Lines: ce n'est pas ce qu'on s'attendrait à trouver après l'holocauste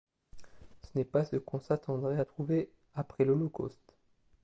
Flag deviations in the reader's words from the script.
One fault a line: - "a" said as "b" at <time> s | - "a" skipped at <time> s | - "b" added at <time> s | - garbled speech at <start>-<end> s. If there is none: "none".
none